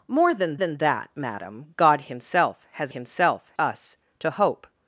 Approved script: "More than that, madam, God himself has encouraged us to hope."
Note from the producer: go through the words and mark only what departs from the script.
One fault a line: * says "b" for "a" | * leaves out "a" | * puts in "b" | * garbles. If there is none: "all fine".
* puts in "than"
* says "himself" for "encouraged"